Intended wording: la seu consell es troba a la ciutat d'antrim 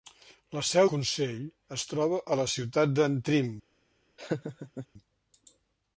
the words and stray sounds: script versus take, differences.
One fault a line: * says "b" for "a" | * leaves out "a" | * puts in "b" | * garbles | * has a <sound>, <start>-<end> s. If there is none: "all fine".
* has a laugh, 4.2-4.9 s